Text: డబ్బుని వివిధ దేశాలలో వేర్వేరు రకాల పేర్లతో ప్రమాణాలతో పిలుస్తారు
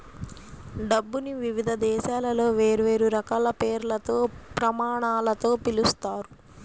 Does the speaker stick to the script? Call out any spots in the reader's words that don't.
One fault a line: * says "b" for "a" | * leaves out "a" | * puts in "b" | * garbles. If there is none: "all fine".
all fine